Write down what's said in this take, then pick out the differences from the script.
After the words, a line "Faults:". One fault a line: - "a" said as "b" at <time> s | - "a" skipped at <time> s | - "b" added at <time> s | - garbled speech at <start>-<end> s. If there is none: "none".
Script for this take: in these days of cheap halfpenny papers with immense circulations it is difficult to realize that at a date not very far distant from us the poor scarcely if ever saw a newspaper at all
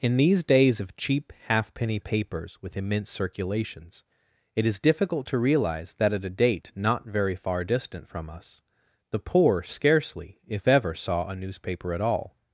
in these days of cheap halfpenny papers with immense circulations it is difficult to realize that at a date not very far distant from us the poor scarcely if ever saw a newspaper at all
Faults:
none